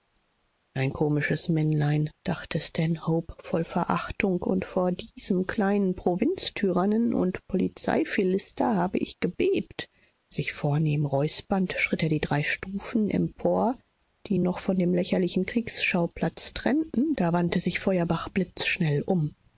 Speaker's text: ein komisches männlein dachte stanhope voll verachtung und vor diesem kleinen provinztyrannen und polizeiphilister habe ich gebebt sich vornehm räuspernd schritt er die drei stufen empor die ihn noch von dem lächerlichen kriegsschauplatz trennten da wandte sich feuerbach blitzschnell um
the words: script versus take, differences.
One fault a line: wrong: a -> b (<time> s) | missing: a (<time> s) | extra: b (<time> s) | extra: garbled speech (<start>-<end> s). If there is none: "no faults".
no faults